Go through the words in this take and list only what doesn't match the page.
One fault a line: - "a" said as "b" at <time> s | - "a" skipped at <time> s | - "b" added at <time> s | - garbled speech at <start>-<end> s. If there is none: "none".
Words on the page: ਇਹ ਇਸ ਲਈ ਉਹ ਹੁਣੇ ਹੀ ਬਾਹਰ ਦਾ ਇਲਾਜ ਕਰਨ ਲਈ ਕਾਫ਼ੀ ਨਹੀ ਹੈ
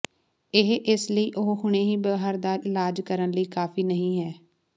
none